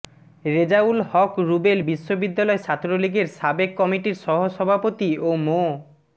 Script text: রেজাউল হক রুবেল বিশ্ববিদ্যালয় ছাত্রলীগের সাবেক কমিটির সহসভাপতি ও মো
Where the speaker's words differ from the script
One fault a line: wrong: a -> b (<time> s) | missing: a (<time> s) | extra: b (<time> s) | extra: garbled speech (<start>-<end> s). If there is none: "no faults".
no faults